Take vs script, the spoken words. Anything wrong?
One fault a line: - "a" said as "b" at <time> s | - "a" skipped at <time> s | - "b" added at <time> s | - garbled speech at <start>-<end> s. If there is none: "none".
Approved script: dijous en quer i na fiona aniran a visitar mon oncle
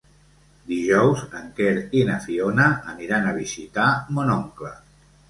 none